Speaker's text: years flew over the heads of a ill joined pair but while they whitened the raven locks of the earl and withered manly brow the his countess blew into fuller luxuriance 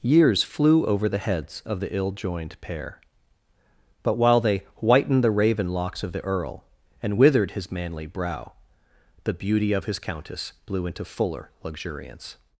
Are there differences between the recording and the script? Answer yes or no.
yes